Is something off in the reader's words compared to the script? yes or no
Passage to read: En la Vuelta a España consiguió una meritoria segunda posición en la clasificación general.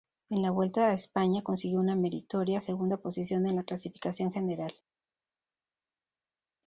no